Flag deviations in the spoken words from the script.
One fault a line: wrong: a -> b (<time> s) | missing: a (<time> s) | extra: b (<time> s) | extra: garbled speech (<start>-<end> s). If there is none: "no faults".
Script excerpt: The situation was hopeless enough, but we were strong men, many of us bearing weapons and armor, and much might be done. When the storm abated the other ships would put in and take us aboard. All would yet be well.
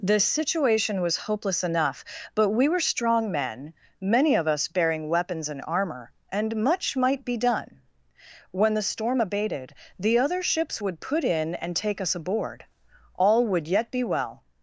no faults